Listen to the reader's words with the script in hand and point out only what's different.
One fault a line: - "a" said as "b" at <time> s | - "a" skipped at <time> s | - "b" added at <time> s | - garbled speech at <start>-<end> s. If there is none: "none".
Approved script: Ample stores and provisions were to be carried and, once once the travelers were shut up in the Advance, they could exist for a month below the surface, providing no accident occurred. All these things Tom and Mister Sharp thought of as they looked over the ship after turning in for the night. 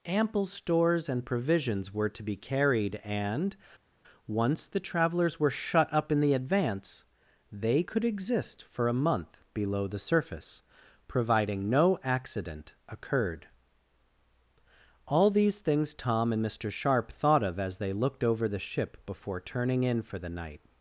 - "once" skipped at 4.7 s
- "after" said as "before" at 19.1 s